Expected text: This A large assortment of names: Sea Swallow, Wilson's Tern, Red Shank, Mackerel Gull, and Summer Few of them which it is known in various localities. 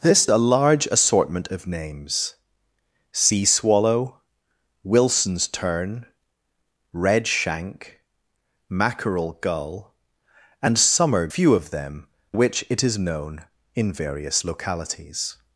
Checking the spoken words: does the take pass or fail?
pass